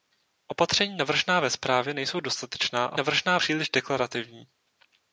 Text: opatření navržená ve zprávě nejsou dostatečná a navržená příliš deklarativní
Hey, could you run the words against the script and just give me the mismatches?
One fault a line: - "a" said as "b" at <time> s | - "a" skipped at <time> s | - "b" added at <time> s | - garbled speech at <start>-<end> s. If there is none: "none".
none